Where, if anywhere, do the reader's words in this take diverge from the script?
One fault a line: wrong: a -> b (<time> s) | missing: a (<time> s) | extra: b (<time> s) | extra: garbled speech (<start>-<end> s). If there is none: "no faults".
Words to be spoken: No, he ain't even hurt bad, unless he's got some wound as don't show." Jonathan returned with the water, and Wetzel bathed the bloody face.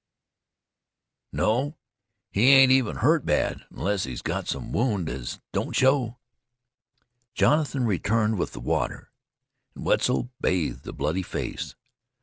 no faults